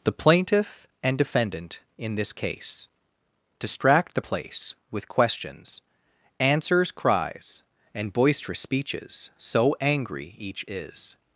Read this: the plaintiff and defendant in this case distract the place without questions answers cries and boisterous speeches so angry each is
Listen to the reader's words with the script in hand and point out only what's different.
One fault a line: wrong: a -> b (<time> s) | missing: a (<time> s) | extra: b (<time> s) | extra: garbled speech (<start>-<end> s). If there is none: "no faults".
wrong: without -> with (4.9 s)